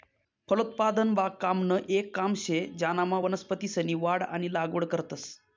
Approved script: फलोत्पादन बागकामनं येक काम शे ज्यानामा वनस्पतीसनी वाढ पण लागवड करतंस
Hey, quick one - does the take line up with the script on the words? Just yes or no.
no